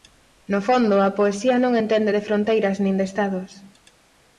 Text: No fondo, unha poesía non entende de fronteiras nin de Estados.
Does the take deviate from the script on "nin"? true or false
false